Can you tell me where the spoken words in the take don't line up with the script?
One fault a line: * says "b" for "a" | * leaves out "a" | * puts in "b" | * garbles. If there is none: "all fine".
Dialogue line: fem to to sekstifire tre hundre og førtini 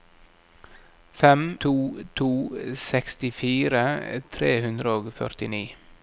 all fine